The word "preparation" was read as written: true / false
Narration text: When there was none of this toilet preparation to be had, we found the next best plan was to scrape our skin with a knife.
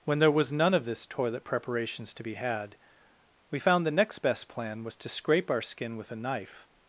false